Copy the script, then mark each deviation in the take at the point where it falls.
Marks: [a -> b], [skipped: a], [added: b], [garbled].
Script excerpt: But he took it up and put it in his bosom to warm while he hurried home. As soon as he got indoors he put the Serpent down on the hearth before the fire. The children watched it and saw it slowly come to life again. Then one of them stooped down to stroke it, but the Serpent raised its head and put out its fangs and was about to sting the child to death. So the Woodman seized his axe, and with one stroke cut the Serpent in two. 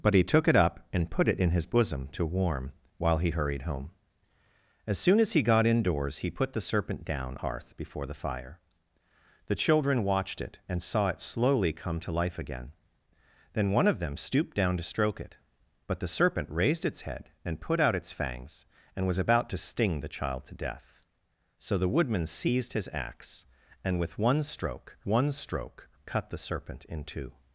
But he took it up and put it in his bosom to warm while he hurried home. As soon as he got indoors he put the Serpent down [skipped: on the] hearth before the fire. The children watched it and saw it slowly come to life again. Then one of them stooped down to stroke it, but the Serpent raised its head and put out its fangs and was about to sting the child to death. So the Woodman seized his axe, and with one stroke [added: one stroke] cut the Serpent in two.